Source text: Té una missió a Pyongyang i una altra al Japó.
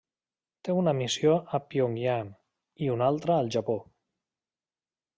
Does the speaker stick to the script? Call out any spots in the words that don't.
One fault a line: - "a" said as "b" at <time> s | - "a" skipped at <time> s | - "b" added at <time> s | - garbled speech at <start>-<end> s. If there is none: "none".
none